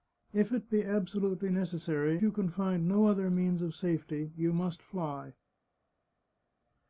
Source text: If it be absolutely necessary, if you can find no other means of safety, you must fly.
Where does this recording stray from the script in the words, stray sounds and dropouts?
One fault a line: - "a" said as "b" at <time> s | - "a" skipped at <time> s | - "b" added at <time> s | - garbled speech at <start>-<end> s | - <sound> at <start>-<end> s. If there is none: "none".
- "if" skipped at 2.2 s